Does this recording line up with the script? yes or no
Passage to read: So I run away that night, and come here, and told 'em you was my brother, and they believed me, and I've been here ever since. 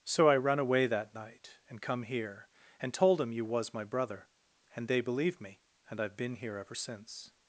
yes